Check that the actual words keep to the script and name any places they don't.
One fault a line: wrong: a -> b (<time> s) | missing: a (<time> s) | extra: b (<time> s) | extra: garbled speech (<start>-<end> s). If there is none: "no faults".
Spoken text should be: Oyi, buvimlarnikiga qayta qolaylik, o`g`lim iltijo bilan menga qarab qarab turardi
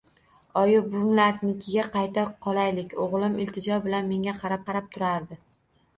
no faults